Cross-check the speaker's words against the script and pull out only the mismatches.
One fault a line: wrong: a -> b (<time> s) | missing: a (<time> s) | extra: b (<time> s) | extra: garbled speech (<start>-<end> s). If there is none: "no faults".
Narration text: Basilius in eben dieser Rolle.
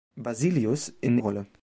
missing: eben dieser (1.2 s)